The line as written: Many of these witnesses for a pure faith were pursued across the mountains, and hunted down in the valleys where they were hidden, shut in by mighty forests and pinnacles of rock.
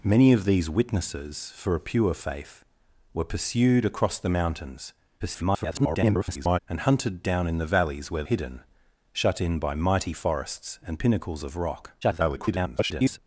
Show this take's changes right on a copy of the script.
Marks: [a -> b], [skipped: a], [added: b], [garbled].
Many of these witnesses for a pure faith were pursued across the mountains, [garbled] and hunted down in the valleys where [skipped: they were] hidden, shut in by mighty forests and pinnacles of rock. [garbled]